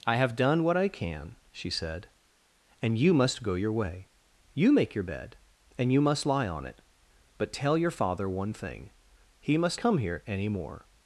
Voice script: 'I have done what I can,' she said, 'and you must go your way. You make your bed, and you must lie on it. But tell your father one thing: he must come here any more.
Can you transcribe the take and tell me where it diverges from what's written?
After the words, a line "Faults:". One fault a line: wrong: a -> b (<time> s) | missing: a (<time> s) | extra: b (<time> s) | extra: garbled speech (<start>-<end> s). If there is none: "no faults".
'I have done what I can,' she said, 'and you must go your way. You make your bed, and you must lie on it. But tell your father one thing: he must come here any more.
Faults:
no faults